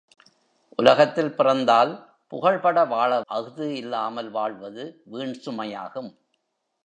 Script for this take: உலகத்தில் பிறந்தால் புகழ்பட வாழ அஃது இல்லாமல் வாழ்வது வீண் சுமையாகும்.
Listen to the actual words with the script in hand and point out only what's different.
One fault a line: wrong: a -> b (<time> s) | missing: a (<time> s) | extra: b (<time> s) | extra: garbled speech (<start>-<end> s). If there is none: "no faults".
no faults